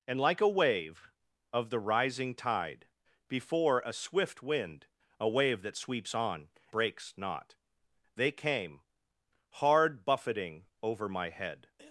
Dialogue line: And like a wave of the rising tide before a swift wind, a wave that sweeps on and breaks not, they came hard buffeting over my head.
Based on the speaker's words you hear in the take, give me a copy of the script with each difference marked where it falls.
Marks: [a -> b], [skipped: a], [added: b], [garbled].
And like a wave of the rising tide before a swift wind, a wave that sweeps on [skipped: and] breaks not, they came hard buffeting over my head.